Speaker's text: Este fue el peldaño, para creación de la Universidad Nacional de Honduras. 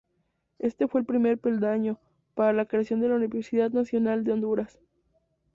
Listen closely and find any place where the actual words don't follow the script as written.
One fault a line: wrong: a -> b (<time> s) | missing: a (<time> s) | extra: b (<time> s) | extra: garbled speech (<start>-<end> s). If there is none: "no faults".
extra: primer (1.0 s)
extra: la (2.5 s)